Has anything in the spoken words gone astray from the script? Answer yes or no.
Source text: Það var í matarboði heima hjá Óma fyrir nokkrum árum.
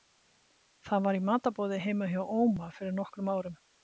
no